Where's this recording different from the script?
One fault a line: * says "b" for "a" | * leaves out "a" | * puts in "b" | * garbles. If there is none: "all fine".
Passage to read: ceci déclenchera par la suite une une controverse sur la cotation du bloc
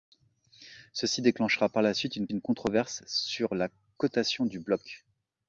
all fine